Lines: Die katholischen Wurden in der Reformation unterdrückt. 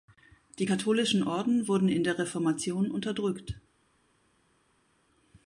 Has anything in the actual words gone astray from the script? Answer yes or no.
yes